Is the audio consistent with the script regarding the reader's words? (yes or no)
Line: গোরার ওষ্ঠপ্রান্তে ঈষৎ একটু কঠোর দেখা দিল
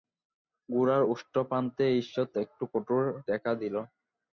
yes